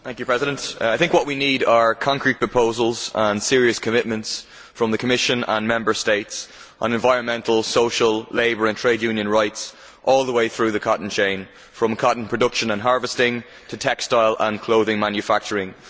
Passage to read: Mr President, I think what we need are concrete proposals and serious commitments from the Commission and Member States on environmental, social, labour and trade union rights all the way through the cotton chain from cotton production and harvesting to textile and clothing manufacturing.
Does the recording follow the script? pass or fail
pass